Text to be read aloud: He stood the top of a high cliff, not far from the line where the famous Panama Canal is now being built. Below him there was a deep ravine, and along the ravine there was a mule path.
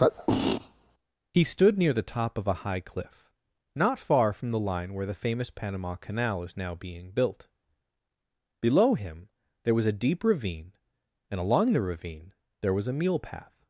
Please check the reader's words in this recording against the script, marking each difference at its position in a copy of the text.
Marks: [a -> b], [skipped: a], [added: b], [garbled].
He stood [added: near] the top of a high cliff, not far from the line where the famous Panama Canal is now being built. Below him there was a deep ravine, and along the ravine there was a mule path.